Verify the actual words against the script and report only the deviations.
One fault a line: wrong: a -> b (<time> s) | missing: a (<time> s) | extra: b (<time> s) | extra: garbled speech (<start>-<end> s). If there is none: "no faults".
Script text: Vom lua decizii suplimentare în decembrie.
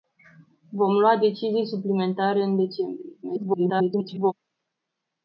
extra: garbled speech (3.2-4.3 s)